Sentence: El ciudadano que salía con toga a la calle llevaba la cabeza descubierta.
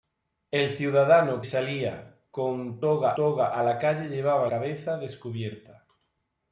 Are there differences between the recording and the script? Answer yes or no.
yes